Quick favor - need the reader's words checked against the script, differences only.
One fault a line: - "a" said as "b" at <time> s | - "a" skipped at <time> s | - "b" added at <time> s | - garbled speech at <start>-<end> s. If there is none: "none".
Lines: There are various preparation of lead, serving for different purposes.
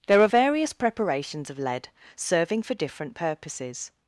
- "preparation" said as "preparations" at 0.7 s